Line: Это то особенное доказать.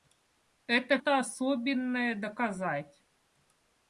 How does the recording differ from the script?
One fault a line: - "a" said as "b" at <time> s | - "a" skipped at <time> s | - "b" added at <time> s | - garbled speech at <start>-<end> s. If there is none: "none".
none